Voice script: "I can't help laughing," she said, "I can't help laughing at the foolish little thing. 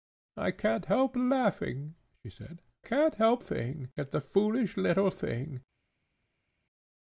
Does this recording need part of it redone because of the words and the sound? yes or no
yes